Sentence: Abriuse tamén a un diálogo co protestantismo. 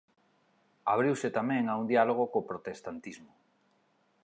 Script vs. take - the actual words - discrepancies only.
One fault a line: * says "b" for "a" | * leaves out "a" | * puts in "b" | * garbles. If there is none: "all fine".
all fine